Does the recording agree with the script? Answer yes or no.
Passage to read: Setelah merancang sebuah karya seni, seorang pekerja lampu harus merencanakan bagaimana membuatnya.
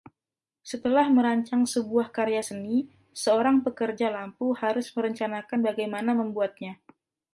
yes